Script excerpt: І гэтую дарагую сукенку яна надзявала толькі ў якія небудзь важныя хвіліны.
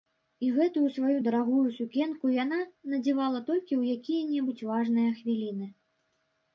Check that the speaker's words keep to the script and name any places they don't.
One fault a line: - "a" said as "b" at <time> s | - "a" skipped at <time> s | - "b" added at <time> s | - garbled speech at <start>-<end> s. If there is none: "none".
- "сваю" added at 0.9 s